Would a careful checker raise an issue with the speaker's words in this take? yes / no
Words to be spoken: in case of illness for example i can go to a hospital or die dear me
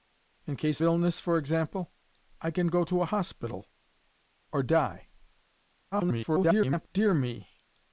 yes